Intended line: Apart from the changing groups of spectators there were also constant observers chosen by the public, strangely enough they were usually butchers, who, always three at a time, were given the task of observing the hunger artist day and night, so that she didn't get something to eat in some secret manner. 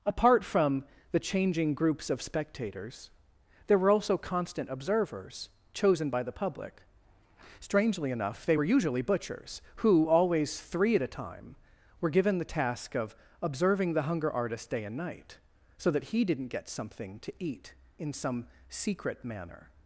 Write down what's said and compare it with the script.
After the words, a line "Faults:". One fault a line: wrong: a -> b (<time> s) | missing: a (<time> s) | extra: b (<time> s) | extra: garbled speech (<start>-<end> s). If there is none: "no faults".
Apart from the changing groups of spectators there were also constant observers chosen by the public, strangely enough they were usually butchers, who, always three at a time, were given the task of observing the hunger artist day and night, so that he didn't get something to eat in some secret manner.
Faults:
wrong: she -> he (16.0 s)